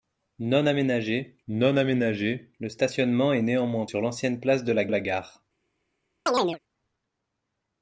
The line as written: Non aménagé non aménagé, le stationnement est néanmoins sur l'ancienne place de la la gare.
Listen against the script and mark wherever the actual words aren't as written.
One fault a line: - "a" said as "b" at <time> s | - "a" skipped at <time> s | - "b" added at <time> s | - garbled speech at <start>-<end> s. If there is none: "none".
none